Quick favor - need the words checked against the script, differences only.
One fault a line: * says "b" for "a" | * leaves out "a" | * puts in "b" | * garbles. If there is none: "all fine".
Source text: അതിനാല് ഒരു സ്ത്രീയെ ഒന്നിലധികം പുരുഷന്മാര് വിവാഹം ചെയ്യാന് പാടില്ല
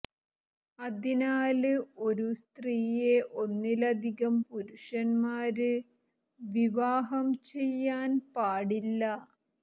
all fine